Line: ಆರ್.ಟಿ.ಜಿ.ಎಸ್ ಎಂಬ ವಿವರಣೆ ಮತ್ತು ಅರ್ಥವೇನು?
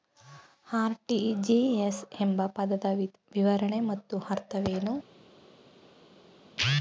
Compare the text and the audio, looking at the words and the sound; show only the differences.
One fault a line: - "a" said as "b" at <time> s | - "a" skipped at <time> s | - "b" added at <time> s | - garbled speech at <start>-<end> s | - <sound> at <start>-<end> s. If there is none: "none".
- "ಪದದ" added at 2.5 s